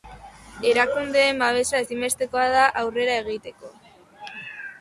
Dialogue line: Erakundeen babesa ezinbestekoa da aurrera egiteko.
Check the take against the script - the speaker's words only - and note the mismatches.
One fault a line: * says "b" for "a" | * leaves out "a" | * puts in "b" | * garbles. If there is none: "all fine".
all fine